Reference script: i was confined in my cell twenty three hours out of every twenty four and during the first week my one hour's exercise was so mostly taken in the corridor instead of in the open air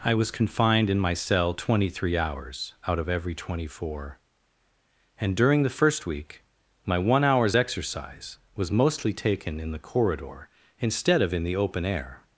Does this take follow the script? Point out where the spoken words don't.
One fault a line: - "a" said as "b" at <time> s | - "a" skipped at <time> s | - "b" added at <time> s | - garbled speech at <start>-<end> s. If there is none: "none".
- "so" skipped at 8.7 s